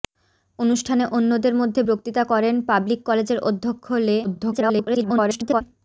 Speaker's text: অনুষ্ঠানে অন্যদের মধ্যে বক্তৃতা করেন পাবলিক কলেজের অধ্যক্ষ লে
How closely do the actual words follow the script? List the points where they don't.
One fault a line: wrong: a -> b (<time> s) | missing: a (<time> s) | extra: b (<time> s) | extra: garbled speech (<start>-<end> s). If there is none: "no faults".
extra: garbled speech (4.2-5.6 s)